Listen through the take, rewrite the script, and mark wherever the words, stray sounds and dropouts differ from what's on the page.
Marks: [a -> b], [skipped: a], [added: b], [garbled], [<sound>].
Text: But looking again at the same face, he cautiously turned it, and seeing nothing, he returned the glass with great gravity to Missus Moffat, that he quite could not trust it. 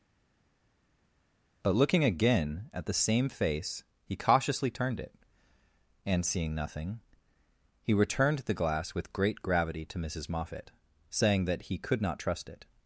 But looking again at the same face, he cautiously turned it, and seeing nothing, he returned the glass with great gravity to Missus Moffat, [added: saying] that he [skipped: quite] could not trust it.